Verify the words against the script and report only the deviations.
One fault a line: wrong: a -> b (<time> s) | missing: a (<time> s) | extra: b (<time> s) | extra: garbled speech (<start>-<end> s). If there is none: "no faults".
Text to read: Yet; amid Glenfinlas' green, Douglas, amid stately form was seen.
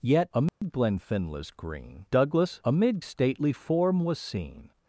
no faults